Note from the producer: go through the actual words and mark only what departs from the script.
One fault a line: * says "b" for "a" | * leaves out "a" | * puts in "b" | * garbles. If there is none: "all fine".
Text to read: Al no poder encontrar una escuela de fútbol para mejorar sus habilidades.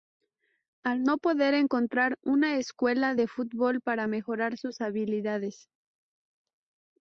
all fine